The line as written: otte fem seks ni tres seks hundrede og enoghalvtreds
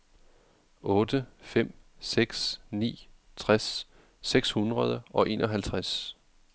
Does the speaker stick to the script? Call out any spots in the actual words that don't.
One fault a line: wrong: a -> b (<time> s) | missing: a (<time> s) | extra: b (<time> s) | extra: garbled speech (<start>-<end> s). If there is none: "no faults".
no faults